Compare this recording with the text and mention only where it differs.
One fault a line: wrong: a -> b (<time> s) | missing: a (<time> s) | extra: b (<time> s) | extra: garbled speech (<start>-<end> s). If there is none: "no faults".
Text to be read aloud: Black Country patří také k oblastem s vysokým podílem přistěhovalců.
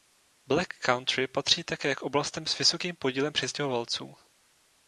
no faults